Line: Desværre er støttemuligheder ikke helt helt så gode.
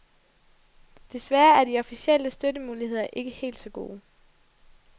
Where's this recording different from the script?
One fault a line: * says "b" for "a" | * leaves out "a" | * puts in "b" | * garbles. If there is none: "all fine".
* puts in "de officielle"
* leaves out "helt"